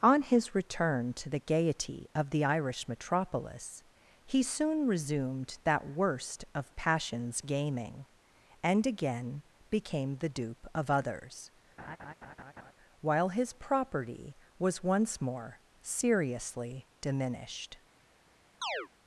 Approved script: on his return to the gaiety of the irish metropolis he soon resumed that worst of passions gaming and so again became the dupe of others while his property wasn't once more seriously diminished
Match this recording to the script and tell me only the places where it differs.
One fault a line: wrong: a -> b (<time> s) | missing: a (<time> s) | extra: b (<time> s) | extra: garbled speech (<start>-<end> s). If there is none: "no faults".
missing: so (8.9 s)
wrong: wasn't -> was (14.6 s)